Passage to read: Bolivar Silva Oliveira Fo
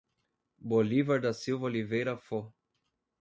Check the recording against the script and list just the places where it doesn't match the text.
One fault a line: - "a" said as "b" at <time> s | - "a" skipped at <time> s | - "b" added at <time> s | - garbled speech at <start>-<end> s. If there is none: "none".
- "da" added at 1.2 s